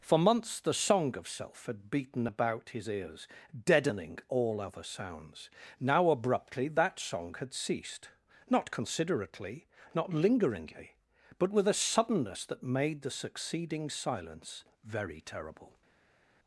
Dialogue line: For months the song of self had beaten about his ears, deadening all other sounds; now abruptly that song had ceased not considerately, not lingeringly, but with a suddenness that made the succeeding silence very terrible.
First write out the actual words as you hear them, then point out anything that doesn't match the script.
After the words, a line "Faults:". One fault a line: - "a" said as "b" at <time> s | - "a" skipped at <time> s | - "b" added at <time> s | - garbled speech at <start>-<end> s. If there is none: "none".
For months the song of self had beaten about his ears, deadening all other sounds; now abruptly that song had ceased not considerately, not lingeringly, but with a suddenness that made the succeeding silence very terrible.
Faults:
none